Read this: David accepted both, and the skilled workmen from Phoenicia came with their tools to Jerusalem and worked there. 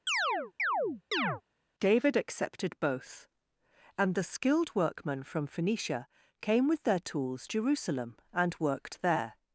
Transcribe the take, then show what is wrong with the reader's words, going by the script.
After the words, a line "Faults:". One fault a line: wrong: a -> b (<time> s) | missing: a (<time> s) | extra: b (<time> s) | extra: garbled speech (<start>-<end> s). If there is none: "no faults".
David accepted both, and the skilled workmen from Phoenicia came with their tools Jerusalem and worked there.
Faults:
missing: to (7.5 s)